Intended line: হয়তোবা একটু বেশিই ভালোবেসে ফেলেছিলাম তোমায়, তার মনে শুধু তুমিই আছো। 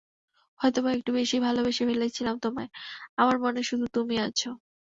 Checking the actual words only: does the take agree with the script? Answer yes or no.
no